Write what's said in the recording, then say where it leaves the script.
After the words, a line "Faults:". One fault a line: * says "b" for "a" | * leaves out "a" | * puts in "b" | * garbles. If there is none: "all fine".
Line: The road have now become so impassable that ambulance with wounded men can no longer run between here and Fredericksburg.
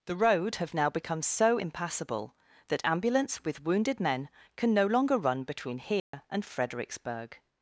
The road have now become so impassable that ambulance with wounded men can no longer run between here and Fredericksburg.
Faults:
all fine